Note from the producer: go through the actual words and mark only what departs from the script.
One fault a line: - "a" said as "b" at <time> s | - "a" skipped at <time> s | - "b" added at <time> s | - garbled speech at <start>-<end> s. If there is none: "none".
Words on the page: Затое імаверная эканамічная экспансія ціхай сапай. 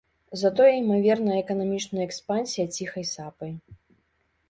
none